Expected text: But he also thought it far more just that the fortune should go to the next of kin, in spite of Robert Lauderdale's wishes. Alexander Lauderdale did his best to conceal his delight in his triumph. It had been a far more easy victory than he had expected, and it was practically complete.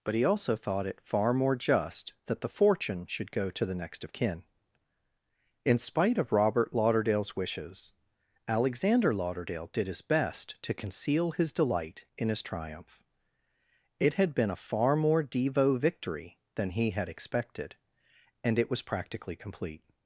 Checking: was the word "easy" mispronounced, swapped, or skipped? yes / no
yes